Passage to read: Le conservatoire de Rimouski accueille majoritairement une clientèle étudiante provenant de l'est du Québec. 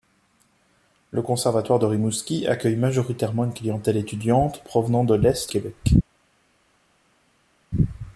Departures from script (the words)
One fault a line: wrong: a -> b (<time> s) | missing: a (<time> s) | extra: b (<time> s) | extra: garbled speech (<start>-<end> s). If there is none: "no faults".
missing: du (5.5 s)